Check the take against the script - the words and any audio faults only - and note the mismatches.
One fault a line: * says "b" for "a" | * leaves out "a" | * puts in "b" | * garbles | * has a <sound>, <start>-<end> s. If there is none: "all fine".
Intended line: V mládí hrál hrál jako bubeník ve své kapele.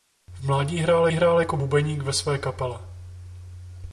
all fine